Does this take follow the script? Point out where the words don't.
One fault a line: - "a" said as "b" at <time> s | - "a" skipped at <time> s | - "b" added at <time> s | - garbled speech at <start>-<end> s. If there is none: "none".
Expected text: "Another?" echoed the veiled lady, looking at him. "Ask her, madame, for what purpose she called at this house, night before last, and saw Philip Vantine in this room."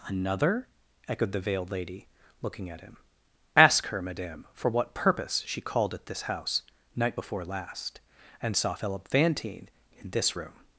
none